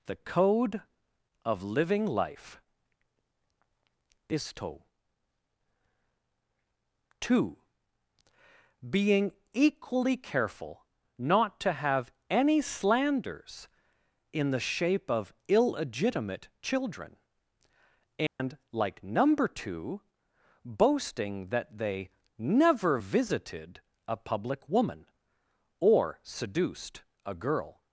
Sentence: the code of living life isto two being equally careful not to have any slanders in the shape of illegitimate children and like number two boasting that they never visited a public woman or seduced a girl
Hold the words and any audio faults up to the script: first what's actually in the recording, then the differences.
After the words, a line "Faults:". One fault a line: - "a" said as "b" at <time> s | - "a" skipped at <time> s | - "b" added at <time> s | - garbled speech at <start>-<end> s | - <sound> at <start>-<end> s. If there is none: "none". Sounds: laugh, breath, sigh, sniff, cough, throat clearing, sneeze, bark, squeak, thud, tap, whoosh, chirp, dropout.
the code of living life isto two being equally careful not to have any slanders in the shape of illegitimate children and like number two boasting that they never visited a public woman or seduced a girl
Faults:
- dropout at 18.3-18.4 s